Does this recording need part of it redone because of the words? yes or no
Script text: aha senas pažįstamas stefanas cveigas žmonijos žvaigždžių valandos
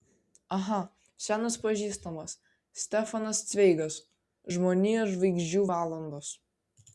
no